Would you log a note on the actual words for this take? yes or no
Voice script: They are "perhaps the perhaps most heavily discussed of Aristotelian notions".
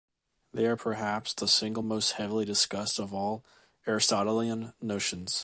yes